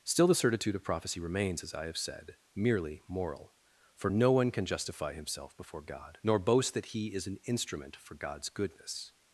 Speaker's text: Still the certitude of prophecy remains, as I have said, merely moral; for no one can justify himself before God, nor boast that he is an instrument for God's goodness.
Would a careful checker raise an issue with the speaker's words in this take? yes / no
no